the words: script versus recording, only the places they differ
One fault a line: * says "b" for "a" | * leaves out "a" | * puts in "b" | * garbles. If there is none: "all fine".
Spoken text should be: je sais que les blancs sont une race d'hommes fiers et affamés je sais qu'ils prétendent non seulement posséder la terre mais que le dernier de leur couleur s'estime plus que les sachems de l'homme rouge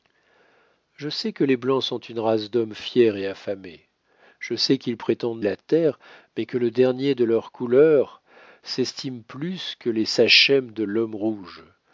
* leaves out "non seulement posséder"